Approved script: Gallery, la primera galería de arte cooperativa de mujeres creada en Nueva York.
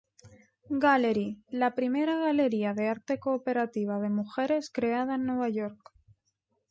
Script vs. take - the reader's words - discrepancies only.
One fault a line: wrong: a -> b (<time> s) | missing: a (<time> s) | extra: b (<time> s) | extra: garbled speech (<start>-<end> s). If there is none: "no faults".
no faults